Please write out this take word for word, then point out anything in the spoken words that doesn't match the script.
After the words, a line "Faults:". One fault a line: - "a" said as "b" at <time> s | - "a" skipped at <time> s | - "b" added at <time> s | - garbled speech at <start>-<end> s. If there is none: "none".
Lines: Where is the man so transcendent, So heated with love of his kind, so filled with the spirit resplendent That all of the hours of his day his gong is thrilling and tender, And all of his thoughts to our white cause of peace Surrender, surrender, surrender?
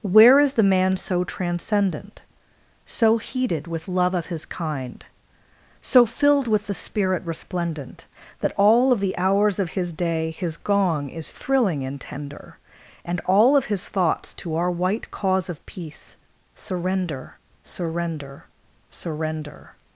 Where is the man so transcendent, So heated with love of his kind, so filled with the spirit resplendent That all of the hours of his day his gong is thrilling and tender, And all of his thoughts to our white cause of peace Surrender, surrender, surrender?
Faults:
none